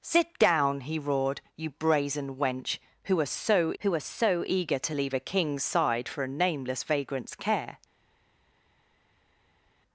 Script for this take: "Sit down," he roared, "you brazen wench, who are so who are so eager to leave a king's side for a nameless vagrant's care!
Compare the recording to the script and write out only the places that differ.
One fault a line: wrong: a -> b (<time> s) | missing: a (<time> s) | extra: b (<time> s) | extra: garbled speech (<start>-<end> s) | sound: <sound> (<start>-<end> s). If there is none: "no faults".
no faults